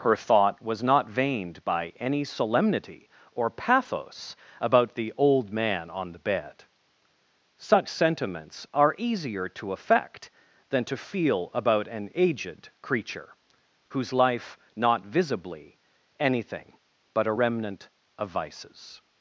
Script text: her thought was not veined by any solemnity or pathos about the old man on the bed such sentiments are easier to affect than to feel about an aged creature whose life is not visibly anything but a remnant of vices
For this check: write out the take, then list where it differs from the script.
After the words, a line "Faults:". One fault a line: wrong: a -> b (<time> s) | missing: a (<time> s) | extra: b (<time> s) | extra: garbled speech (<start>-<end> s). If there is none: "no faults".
her thought was not veined by any solemnity or pathos about the old man on the bed such sentiments are easier to affect than to feel about an aged creature whose life not visibly anything but a remnant of vices
Faults:
missing: is (14.6 s)